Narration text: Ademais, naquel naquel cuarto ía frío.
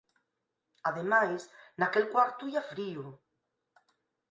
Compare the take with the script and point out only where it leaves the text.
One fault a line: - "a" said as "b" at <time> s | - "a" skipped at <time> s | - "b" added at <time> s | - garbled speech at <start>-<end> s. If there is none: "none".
- "naquel" skipped at 2.0 s